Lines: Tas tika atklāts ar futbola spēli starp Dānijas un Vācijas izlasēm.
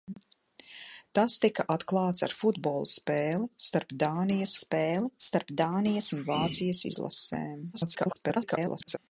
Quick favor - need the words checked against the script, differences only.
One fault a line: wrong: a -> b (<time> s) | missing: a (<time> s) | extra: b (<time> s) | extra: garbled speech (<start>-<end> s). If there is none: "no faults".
extra: spēli starp Dānijas (4.6 s)
extra: garbled speech (7.7-9.0 s)